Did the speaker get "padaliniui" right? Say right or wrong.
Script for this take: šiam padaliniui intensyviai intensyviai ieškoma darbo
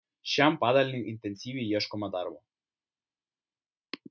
right